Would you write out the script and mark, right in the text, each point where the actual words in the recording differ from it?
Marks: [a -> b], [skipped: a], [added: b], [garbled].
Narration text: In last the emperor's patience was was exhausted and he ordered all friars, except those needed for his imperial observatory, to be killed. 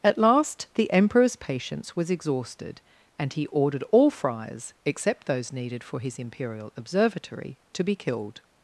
[In -> At] last the emperor's patience was [skipped: was] exhausted and he ordered all friars, except those needed for his imperial observatory, to be killed.